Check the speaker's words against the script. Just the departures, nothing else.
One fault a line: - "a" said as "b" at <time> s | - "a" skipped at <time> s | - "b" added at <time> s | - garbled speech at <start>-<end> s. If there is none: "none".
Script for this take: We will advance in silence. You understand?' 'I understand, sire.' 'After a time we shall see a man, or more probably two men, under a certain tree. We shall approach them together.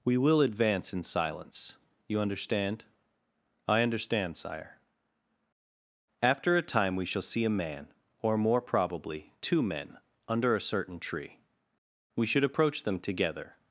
- "shall" said as "should" at 12.2 s